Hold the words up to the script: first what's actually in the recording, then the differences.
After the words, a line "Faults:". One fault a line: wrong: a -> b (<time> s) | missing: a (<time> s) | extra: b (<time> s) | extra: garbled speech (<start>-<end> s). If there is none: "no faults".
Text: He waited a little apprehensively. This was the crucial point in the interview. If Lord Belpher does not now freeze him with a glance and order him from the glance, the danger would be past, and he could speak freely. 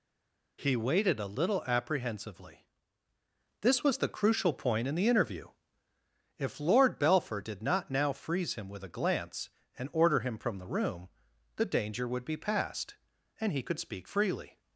He waited a little apprehensively. This was the crucial point in the interview. If Lord Belpher did not now freeze him with a glance and order him from the room, the danger would be past, and he could speak freely.
Faults:
wrong: does -> did (7.4 s)
wrong: glance -> room (10.7 s)